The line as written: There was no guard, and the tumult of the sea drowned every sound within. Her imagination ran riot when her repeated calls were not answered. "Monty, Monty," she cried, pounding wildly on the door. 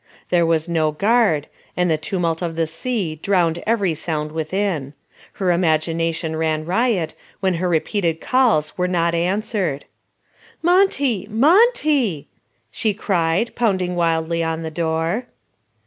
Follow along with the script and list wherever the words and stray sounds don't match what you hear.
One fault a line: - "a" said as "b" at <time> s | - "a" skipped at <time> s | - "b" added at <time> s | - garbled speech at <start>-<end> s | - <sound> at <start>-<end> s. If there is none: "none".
none